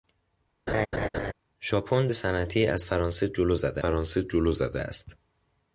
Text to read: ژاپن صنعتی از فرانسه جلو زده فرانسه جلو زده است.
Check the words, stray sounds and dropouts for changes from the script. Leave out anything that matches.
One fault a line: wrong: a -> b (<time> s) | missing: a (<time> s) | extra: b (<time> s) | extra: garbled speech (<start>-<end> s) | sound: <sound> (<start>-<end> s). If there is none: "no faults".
sound: laugh (0.7-1.3 s)